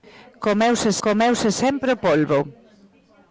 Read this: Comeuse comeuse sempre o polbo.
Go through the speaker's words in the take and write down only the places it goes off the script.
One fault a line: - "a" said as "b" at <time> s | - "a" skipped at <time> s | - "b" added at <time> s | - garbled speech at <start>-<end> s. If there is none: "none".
none